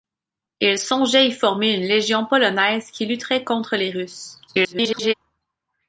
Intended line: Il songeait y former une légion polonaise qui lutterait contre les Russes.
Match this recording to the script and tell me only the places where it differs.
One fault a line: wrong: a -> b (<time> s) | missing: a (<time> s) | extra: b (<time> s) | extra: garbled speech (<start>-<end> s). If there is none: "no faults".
extra: garbled speech (4.5-5.1 s)